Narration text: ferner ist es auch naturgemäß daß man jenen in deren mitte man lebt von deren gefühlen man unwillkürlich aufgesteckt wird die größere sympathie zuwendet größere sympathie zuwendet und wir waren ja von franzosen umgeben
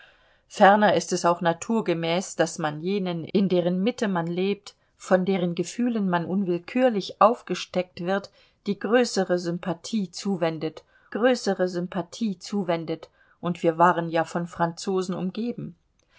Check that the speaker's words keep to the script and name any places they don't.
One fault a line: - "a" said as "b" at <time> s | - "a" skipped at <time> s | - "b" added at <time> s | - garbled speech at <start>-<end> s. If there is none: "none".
none